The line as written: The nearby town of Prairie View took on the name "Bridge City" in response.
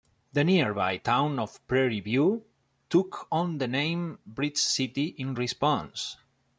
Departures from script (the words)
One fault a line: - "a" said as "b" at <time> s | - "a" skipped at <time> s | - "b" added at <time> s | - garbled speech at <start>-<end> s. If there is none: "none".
none